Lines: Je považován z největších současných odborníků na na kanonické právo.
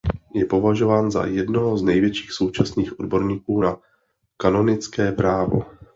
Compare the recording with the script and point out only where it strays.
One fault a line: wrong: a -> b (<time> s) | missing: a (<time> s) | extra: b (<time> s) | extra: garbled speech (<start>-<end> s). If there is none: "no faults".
extra: za jednoho (1.1 s)
missing: na (3.8 s)